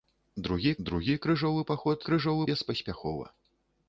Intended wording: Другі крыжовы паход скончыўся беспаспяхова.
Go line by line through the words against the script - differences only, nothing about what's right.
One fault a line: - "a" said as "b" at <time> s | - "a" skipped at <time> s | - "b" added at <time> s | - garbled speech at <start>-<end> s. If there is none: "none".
- "другі" added at 0.9 s
- "скончыўся" said as "крыжовы" at 2.1 s